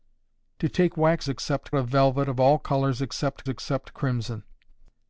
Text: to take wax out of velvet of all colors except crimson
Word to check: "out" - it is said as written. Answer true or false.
false